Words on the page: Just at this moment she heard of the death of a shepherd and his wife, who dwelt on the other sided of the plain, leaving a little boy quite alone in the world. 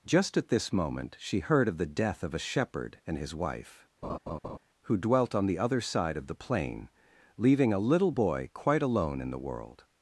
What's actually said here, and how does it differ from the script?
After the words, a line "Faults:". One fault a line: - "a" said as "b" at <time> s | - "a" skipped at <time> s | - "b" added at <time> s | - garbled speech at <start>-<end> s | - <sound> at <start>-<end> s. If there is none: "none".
Just at this moment she heard of the death of a shepherd and his wife, who dwelt on the other side of the plain, leaving a little boy quite alone in the world.
Faults:
- laugh at 4.0-4.6 s
- "sided" said as "side" at 5.8 s